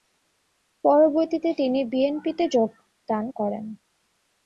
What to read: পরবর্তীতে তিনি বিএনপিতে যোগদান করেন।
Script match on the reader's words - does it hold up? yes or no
yes